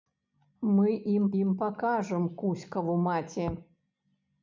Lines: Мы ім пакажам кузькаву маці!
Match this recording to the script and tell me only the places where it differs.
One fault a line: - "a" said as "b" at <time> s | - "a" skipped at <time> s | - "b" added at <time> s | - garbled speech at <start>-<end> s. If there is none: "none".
- "ім" added at 1.4 s